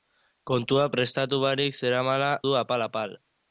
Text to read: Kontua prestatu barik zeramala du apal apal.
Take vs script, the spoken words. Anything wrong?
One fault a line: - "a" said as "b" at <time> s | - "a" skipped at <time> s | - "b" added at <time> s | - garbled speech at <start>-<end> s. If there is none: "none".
none